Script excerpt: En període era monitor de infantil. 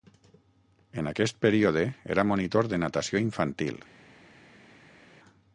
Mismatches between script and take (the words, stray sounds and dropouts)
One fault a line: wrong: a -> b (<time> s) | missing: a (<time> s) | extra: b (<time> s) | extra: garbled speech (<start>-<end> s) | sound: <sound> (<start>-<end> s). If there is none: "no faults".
extra: aquest (1.1 s)
extra: natació (2.8 s)